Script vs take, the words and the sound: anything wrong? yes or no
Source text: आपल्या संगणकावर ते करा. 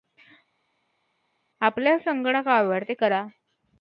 no